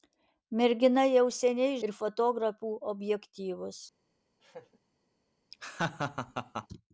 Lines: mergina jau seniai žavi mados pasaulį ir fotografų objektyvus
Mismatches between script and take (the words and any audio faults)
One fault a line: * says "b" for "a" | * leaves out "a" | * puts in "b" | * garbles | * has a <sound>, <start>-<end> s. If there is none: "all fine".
* leaves out "žavi mados pasaulį"
* has a laugh, 4.4-4.8 s
* has a laugh, 5.5-6.7 s